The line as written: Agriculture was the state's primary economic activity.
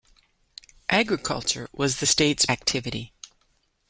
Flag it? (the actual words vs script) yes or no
yes